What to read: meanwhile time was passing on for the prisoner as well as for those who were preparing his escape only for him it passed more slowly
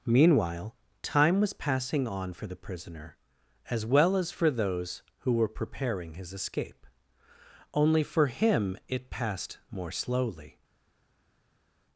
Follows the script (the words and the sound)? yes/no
yes